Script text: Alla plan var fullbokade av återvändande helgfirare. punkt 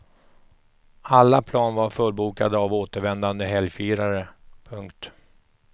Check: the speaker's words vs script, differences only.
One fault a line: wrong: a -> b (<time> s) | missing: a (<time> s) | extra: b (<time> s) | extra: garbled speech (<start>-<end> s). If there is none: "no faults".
no faults